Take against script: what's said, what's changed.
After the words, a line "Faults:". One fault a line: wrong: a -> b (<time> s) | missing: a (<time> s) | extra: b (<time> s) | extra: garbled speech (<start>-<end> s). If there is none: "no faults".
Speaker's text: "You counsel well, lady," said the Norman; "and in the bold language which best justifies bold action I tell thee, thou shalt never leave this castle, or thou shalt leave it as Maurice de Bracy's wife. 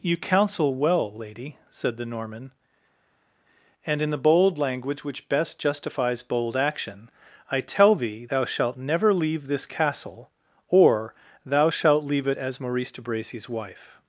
"You counsel well, lady," said the Norman; "and in the bold language which best justifies bold action I tell thee, thou shalt never leave this castle, or thou shalt leave it as Maurice de Bracy's wife.
Faults:
no faults